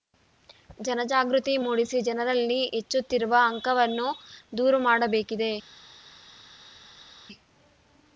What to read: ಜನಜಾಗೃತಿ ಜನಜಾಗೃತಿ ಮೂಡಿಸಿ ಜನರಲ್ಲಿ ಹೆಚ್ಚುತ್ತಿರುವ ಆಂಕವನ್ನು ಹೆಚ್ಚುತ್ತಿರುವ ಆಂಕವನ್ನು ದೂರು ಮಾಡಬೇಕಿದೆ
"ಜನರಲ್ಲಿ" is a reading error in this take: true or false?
false